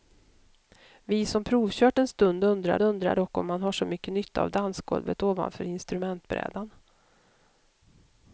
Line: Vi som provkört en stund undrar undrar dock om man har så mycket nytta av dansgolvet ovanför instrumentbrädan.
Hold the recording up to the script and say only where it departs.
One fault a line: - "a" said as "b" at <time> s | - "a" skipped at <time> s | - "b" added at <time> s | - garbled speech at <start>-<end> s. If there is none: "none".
none